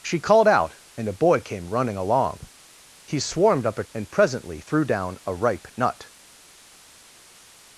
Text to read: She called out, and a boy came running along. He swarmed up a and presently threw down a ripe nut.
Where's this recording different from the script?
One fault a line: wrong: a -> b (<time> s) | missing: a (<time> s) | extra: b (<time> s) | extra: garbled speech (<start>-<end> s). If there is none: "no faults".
no faults